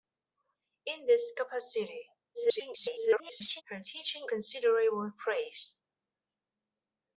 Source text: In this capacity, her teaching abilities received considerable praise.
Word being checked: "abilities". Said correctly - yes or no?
no